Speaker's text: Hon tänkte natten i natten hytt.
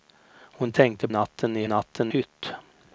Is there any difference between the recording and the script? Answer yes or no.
no